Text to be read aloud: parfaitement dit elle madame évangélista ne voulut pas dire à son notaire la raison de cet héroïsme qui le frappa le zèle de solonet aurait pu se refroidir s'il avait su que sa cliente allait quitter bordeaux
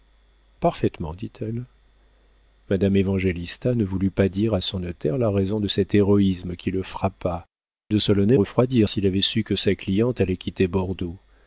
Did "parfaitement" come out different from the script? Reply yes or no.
no